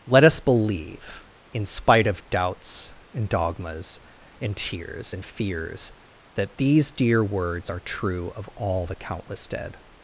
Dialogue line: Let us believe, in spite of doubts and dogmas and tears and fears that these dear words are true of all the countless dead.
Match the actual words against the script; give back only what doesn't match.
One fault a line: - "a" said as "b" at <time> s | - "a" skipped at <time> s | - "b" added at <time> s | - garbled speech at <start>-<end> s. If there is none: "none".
none